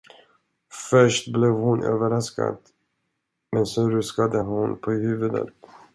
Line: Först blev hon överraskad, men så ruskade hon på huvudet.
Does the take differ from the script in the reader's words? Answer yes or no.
no